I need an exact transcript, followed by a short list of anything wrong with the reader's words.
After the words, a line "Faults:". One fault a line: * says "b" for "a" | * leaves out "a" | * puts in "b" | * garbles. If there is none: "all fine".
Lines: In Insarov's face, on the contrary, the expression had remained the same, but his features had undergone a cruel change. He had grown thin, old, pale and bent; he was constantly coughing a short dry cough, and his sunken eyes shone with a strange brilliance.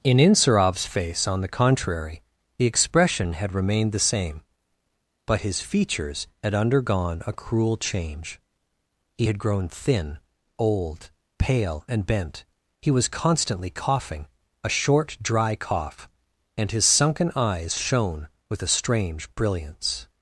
In Insarov's face, on the contrary, the expression had remained the same, but his features had undergone a cruel change. He had grown thin, old, pale and bent; he was constantly coughing a short dry cough, and his sunken eyes shone with a strange brilliance.
Faults:
all fine